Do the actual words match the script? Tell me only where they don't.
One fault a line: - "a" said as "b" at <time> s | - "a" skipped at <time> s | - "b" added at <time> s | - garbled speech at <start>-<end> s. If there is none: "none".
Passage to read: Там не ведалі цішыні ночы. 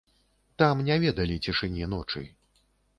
none